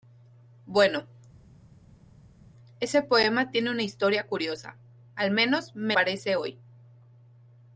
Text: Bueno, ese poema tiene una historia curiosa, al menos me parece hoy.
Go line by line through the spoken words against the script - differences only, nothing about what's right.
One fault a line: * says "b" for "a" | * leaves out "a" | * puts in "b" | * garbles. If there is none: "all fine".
all fine